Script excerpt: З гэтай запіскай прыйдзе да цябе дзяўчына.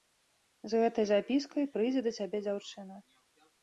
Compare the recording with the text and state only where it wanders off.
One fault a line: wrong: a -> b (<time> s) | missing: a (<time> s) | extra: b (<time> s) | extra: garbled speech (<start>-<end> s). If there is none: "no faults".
no faults